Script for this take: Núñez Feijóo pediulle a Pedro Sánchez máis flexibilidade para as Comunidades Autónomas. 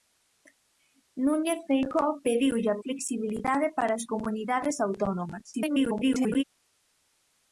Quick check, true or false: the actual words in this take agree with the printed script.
false